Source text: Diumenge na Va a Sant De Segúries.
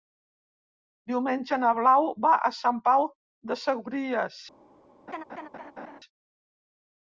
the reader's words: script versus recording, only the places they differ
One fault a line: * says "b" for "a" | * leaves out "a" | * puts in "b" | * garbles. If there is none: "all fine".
* puts in "Blau"
* puts in "Pau"